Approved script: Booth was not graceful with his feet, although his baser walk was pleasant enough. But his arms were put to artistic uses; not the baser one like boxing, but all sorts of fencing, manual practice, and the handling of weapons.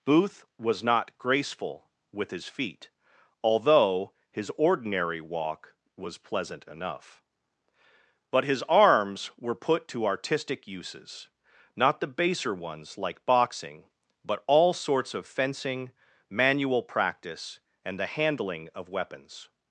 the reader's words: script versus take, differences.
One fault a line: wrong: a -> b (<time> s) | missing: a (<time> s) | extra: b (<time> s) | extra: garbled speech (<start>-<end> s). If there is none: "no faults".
wrong: baser -> ordinary (4.6 s)
wrong: one -> ones (12.6 s)